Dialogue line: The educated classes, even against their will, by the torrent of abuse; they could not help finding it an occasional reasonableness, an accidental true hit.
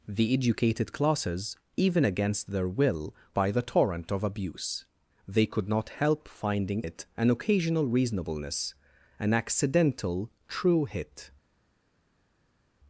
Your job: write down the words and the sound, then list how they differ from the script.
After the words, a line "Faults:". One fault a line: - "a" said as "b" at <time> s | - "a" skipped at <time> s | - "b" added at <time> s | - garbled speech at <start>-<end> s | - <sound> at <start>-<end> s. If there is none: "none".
The educated classes, even against their will, by the torrent of abuse; they could not help finding it an occasional reasonableness, an accidental true hit.
Faults:
none